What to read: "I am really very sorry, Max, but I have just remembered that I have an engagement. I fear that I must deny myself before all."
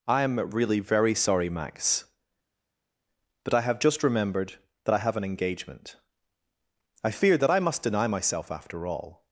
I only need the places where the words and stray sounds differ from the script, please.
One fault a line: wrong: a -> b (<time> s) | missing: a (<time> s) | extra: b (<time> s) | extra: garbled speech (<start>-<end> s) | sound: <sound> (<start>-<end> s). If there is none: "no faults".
wrong: before -> after (8.5 s)